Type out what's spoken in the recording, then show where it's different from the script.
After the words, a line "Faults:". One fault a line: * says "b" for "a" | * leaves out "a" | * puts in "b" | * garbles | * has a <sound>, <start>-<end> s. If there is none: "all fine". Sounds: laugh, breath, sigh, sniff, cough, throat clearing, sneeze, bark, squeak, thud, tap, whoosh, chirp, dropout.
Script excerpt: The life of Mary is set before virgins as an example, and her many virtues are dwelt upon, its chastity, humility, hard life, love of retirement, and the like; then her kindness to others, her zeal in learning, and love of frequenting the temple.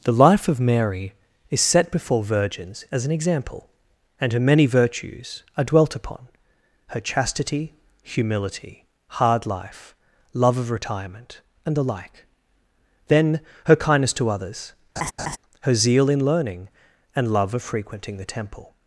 The life of Mary is set before virgins as an example, and her many virtues are dwelt upon, her chastity, humility, hard life, love of retirement, and the like; then her kindness to others, her zeal in learning, and love of frequenting the temple.
Faults:
* says "her" for "its"
* has a laugh, 15.0-15.4 s